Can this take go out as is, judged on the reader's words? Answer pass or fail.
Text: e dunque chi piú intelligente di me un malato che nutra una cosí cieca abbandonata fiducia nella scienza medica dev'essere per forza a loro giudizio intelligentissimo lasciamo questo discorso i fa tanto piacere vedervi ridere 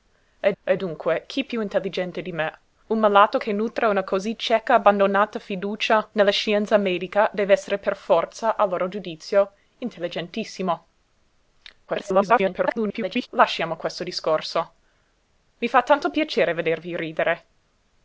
fail